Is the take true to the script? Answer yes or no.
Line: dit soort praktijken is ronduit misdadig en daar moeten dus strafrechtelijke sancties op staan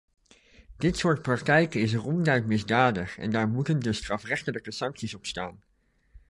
yes